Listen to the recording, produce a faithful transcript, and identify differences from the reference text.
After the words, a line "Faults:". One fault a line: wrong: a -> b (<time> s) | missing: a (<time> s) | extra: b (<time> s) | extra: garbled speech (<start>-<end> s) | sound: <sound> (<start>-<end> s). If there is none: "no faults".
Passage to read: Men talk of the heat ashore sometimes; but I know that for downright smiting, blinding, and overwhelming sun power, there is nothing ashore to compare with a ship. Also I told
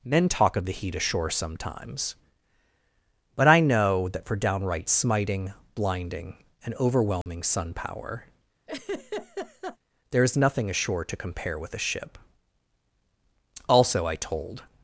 Men talk of the heat ashore sometimes; but I know that for downright smiting, blinding, and overwhelming sun power, there is nothing ashore to compare with a ship. Also I told
Faults:
sound: dropout (7.2-7.3 s)
sound: laugh (8.7-9.8 s)